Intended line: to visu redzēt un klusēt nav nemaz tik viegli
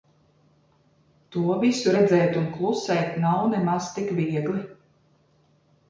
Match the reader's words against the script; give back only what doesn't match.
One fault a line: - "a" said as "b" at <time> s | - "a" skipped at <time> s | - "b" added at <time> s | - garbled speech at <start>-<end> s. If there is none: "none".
none